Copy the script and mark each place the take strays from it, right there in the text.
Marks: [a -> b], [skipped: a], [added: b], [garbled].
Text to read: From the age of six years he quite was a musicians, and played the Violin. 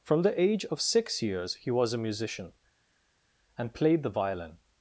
From the age of six years he [skipped: quite] was a [musicians, -> musician] and played the Violin.